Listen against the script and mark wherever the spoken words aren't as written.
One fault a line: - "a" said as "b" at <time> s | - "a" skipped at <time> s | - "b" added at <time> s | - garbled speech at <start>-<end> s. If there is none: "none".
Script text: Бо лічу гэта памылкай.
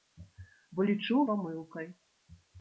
- "гэта" skipped at 1.2 s